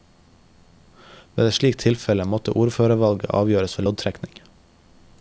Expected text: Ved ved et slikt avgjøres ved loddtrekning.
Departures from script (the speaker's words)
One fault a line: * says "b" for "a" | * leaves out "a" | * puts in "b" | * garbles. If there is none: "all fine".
* leaves out "ved"
* puts in "tilfelle måtte ordførervalget"